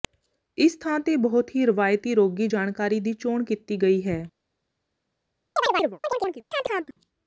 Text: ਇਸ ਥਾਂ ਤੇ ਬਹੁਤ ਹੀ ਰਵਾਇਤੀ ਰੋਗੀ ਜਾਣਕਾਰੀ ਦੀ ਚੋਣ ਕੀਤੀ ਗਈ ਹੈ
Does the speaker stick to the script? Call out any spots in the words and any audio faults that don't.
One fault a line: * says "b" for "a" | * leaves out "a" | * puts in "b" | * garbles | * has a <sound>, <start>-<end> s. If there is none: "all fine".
* has a chirp, 5.6-7.0 s